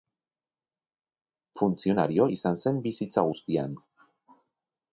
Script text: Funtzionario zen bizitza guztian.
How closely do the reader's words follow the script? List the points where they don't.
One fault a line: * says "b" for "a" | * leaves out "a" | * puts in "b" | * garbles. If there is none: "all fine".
* puts in "izan"